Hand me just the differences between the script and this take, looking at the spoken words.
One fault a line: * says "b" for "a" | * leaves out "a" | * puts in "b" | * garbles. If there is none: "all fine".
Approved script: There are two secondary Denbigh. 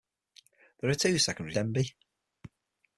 all fine